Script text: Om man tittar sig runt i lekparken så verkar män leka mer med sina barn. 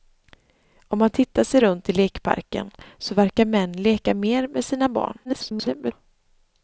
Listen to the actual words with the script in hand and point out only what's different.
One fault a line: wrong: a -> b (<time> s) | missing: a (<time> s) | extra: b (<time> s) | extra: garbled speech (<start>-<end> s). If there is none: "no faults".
extra: garbled speech (5.2-5.9 s)